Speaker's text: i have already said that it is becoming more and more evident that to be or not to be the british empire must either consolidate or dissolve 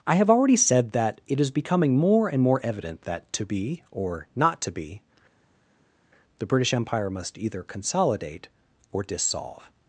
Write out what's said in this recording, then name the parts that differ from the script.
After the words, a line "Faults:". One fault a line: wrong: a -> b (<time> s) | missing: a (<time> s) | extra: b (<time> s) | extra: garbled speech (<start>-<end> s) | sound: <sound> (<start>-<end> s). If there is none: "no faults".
i have already said that it is becoming more and more evident that to be or not to be the british empire must either consolidate or dissolve
Faults:
no faults